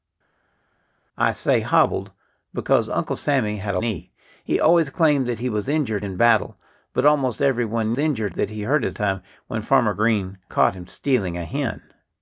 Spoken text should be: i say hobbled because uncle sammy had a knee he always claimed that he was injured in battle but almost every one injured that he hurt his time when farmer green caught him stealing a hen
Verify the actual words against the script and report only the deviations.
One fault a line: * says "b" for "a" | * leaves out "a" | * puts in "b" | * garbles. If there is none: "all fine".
all fine